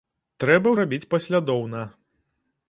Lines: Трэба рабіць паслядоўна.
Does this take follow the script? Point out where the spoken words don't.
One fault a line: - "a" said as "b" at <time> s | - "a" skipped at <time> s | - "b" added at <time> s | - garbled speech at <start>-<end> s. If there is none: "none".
none